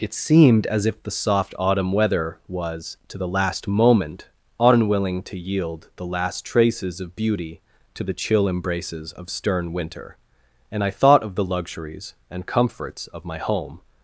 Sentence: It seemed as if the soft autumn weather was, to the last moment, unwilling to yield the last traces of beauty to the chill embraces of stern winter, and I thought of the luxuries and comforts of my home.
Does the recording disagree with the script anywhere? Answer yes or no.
no